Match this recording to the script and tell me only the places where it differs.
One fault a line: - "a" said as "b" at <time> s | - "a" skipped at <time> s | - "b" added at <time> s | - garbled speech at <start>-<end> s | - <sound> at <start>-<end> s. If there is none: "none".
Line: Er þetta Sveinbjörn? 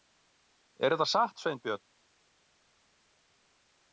- "satt" added at 1.1 s